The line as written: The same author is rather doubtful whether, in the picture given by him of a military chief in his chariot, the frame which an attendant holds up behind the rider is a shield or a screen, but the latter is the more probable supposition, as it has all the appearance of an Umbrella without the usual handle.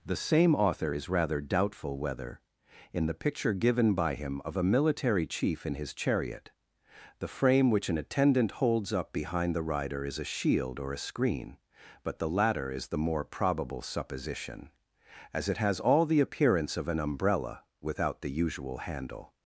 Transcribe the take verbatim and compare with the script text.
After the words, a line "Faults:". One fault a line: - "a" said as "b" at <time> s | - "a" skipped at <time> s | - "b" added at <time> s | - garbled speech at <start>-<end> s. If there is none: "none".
The same author is rather doubtful whether, in the picture given by him of a military chief in his chariot, the frame which an attendant holds up behind the rider is a shield or a screen, but the latter is the more probable supposition, as it has all the appearance of an Umbrella without the usual handle.
Faults:
none